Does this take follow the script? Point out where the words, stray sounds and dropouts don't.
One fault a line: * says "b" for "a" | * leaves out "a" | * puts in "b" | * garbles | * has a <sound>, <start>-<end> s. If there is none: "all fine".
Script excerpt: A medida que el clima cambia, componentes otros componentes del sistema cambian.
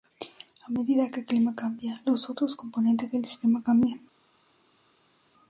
* says "los" for "componentes"